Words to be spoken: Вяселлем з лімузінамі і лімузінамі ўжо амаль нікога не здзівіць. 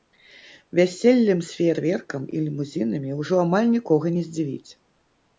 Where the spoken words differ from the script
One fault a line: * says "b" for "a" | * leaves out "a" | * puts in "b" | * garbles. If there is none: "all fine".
* says "феерверкам" for "лімузінамі"